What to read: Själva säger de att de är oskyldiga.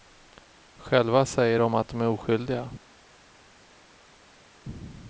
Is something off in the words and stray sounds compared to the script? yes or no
no